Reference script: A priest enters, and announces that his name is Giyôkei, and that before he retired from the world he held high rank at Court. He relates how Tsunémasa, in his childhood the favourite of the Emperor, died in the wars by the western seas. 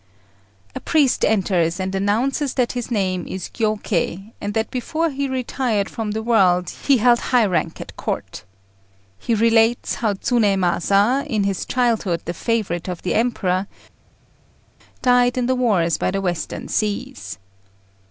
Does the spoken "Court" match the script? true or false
true